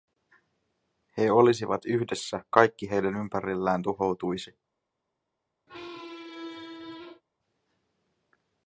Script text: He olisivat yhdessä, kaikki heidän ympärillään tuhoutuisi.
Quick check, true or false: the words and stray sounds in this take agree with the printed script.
false